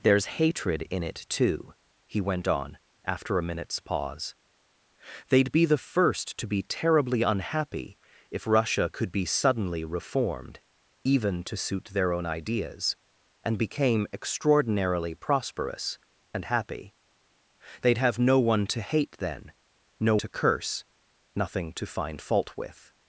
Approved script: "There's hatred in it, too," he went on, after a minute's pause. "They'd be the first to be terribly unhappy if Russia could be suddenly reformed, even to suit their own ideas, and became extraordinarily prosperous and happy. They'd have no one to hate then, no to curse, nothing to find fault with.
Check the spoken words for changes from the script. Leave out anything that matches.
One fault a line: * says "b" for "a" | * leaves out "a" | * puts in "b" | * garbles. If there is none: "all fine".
all fine